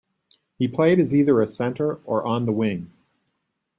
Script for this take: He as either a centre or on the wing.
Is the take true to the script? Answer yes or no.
no